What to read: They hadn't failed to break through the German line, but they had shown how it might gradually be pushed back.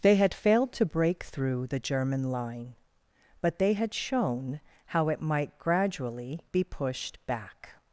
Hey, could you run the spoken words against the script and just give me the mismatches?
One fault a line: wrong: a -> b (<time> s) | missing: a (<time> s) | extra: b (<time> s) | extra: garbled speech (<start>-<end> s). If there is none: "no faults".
wrong: hadn't -> had (0.1 s)